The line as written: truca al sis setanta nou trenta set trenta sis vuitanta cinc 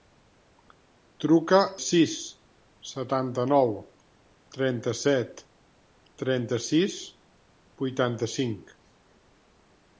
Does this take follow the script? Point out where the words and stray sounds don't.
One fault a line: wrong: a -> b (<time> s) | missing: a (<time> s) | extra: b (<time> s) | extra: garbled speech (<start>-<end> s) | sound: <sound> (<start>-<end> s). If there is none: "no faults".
missing: al (1.6 s)